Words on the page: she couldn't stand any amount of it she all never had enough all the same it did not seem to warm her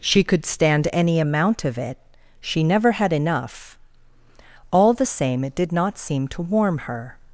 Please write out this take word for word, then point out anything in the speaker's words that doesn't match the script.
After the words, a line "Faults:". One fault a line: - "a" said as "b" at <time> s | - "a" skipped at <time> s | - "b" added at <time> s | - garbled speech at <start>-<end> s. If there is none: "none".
she could stand any amount of it she never had enough all the same it did not seem to warm her
Faults:
- "couldn't" said as "could" at 0.2 s
- "all" skipped at 2.6 s